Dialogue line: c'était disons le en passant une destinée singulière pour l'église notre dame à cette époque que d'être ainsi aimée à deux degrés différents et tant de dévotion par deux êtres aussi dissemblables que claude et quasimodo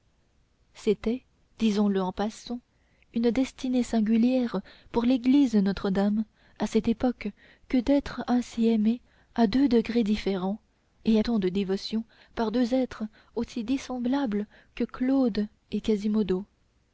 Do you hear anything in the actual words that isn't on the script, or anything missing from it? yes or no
no